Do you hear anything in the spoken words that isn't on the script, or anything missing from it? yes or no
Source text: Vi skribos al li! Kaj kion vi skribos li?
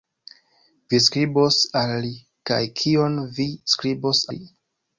no